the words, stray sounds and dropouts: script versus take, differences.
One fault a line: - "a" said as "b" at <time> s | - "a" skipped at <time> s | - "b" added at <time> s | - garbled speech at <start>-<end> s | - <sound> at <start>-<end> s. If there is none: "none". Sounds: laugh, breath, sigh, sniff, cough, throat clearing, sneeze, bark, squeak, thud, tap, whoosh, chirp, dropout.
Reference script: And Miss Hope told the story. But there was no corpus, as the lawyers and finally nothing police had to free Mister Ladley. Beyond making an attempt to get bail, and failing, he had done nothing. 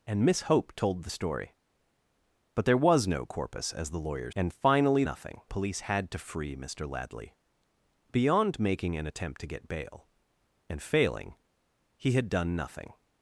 none